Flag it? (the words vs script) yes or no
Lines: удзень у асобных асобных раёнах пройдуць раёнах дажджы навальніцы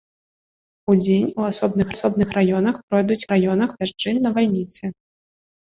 no